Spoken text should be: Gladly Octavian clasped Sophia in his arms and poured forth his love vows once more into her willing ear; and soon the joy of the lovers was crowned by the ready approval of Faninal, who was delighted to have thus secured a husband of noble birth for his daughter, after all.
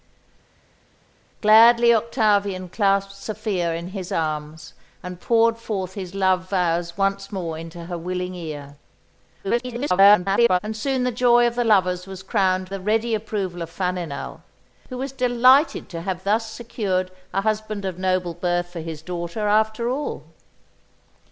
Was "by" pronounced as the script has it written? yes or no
no